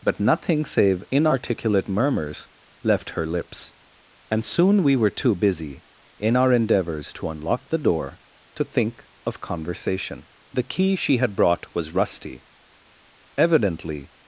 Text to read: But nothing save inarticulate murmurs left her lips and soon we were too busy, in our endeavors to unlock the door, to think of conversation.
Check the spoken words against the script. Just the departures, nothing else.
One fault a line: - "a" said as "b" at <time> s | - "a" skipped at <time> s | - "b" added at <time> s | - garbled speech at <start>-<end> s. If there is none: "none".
- "The key she had brought was rusty Evidently" added at 10.5 s